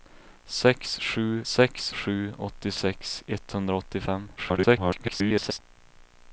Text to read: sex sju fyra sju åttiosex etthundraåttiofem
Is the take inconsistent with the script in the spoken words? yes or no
yes